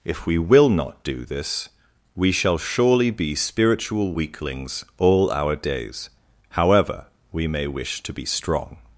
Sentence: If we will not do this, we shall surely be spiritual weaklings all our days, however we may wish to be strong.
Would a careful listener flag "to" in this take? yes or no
no